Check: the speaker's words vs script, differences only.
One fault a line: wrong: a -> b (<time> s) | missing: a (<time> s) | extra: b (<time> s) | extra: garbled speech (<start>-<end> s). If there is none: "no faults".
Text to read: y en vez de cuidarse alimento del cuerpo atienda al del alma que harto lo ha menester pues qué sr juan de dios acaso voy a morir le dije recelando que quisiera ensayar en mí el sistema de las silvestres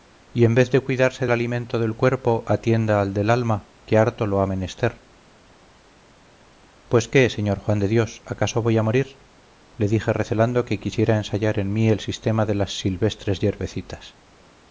no faults